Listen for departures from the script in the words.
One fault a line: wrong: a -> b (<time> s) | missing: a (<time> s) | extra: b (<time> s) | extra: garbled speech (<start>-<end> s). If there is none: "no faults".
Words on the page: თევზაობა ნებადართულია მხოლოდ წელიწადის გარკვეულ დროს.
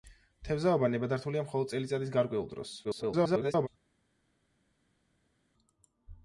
extra: garbled speech (2.8-3.7 s)